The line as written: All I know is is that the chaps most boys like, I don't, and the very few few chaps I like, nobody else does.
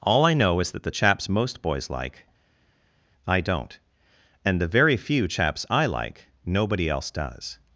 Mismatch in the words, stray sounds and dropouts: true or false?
true